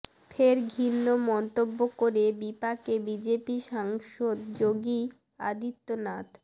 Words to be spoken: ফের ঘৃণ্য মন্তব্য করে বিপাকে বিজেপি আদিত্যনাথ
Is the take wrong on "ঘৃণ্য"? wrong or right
right